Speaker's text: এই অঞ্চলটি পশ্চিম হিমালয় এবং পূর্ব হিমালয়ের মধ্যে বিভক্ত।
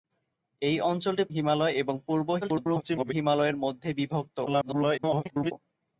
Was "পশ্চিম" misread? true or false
true